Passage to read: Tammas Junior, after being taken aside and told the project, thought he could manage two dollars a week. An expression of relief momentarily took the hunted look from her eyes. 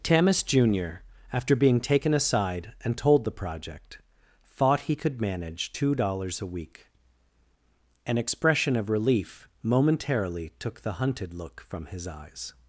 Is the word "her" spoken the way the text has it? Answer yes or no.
no